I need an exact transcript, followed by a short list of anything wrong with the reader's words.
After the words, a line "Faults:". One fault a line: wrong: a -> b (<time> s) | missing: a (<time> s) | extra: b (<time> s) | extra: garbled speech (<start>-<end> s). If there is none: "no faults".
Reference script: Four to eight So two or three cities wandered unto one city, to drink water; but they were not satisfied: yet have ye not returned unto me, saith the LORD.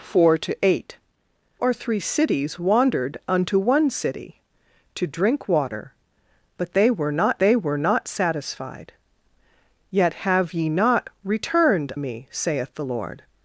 Four to eight Or three cities wandered unto one city, to drink water; but they were not they were not satisfied: yet have ye not returned me, saith the LORD.
Faults:
missing: So two (1.0 s)
extra: they were not (7.4 s)
missing: unto (11.9 s)